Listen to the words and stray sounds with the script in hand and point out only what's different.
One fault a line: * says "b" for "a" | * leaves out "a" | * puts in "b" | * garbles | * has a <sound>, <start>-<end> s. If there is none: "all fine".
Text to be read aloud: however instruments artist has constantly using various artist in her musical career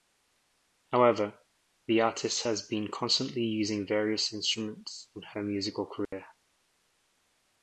* says "the" for "instruments"
* puts in "been"
* says "instruments" for "artist"
* has a dropout, 6.1-6.1 s